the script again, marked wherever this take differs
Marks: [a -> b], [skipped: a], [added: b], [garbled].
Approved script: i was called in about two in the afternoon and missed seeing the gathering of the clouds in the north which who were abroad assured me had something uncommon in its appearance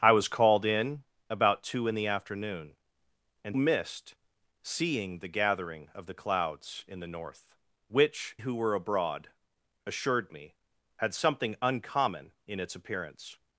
i was called in about two in the afternoon and missed seeing the gathering of the clouds in the north which who were abroad assured me had something uncommon in its appearance